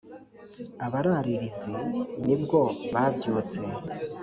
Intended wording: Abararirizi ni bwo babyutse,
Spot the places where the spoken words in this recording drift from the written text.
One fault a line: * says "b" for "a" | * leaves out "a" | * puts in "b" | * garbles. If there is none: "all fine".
all fine